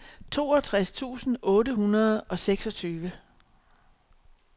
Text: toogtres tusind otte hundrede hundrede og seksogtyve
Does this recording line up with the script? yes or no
no